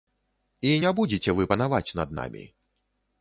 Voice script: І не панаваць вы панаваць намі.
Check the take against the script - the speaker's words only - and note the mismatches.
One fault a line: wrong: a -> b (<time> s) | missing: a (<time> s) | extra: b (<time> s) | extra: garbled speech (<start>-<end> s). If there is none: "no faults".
wrong: панаваць -> будзеце (1.0 s)
extra: над (2.0 s)